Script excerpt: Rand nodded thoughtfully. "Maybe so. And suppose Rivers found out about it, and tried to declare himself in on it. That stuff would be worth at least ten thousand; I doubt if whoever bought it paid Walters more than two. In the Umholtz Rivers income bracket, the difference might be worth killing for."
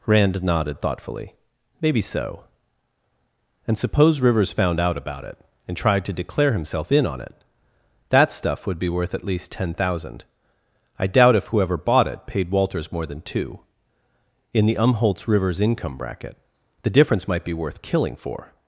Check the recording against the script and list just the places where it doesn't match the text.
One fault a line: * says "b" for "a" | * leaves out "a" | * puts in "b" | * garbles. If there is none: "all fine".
all fine